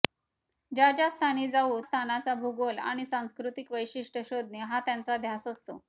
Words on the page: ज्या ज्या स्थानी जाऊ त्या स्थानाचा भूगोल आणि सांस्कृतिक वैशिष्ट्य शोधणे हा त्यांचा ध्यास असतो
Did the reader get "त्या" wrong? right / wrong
wrong